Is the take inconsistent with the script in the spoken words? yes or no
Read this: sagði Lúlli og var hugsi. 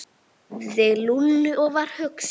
no